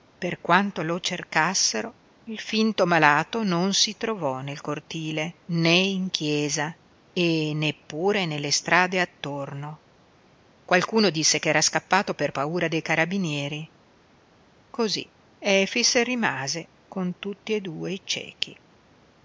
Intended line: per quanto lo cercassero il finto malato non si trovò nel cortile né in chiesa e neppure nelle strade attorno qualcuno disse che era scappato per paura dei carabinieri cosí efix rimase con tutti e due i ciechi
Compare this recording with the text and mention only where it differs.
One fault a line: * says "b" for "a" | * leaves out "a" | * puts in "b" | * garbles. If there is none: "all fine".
all fine